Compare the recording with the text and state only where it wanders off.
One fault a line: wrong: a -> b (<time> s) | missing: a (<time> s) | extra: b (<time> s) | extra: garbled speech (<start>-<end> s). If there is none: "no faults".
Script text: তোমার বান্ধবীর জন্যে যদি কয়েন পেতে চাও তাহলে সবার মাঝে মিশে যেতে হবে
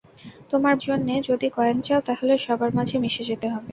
missing: বান্ধবীর (0.8 s)
missing: পেতে (1.8 s)